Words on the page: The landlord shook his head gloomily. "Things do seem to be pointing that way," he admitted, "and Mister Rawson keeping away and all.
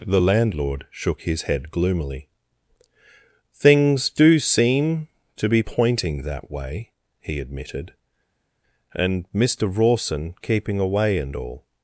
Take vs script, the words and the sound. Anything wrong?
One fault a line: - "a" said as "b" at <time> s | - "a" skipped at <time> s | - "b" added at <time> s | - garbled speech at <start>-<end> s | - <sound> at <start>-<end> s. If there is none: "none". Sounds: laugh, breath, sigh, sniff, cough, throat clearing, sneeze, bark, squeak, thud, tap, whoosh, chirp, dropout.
none